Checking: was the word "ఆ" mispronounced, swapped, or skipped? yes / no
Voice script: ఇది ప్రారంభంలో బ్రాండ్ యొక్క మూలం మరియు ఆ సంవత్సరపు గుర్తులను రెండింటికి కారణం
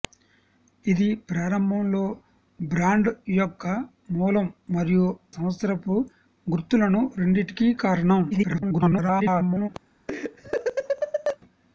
yes